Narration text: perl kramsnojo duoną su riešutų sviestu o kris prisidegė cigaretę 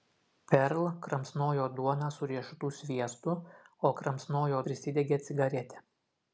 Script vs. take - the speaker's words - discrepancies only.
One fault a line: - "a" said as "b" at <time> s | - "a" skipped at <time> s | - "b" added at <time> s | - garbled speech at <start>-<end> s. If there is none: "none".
- "kris" said as "kramsnojo" at 4.0 s